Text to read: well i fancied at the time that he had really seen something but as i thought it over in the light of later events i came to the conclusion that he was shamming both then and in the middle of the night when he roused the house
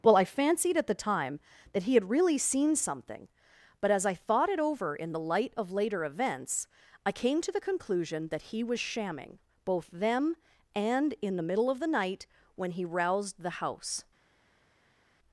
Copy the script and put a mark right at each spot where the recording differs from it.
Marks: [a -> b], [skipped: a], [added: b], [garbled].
well i fancied at the time that he had really seen something but as i thought it over in the light of later events i came to the conclusion that he was shamming both [then -> them] and in the middle of the night when he roused the house